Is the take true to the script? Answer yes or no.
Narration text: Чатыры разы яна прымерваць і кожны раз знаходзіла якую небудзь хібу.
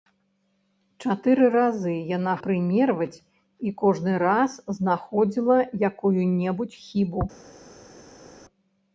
yes